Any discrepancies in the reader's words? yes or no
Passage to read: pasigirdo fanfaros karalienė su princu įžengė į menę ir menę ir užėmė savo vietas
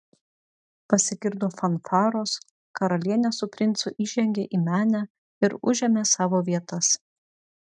yes